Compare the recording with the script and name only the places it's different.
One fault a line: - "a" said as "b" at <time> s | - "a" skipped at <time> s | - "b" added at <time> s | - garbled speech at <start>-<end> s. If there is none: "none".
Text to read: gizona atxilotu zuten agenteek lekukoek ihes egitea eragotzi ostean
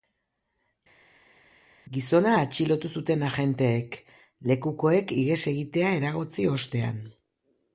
none